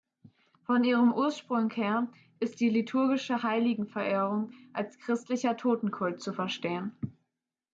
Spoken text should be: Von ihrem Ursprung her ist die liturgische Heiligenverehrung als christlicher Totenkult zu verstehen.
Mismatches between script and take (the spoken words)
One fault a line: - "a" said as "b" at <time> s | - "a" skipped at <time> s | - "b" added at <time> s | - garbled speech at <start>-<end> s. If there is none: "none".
none